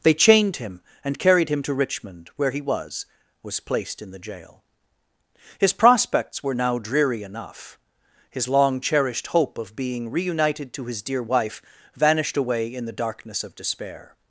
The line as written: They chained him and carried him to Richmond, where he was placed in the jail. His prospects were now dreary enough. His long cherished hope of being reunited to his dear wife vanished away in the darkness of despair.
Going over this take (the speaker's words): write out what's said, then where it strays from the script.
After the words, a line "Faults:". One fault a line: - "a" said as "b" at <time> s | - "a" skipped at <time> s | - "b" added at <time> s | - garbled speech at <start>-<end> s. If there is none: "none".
They chained him and carried him to Richmond, where he was was placed in the jail. His prospects were now dreary enough. His long cherished hope of being reunited to his dear wife vanished away in the darkness of despair.
Faults:
- "was" added at 3.4 s